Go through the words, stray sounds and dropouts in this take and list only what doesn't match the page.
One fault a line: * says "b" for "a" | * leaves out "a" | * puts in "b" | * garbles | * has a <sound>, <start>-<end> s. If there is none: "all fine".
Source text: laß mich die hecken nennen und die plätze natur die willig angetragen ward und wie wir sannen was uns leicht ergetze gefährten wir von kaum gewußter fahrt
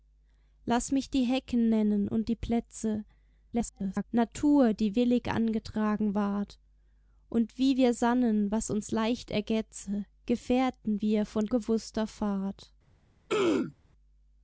* garbles
* leaves out "kaum"
* has a throat clearing, 13.3-13.7 s